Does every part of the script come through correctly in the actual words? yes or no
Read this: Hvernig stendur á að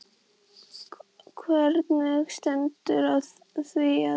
no